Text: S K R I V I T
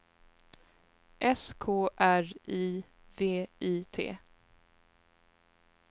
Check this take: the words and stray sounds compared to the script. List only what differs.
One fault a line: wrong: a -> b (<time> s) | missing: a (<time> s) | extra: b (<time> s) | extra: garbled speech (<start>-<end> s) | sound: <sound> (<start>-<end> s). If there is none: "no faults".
no faults